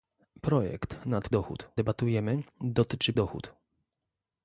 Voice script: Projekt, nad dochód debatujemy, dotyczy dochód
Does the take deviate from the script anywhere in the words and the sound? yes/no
no